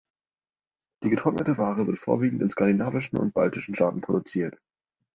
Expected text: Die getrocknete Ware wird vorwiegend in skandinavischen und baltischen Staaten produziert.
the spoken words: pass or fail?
pass